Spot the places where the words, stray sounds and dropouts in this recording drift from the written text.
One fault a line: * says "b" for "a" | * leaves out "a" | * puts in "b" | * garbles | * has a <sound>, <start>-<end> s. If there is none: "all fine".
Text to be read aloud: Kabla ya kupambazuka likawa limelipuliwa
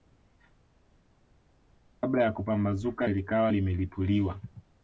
all fine